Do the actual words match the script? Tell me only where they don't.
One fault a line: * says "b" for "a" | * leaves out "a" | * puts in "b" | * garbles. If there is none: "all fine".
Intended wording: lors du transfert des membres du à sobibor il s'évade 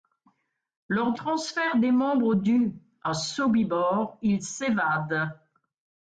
* leaves out "du"